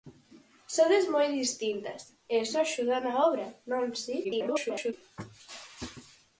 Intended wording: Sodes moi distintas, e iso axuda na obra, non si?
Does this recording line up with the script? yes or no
no